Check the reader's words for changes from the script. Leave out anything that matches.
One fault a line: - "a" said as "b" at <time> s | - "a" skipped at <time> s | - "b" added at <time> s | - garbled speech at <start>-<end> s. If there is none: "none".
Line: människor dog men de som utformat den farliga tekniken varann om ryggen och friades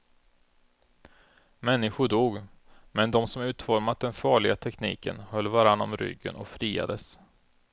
- "höll" added at 5.2 s